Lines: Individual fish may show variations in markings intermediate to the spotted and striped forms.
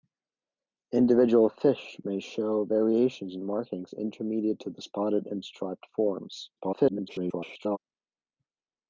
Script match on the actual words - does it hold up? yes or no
no